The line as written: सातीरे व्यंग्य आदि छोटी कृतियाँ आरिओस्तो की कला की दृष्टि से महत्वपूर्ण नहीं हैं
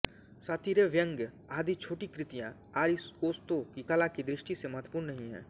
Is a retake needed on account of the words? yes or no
no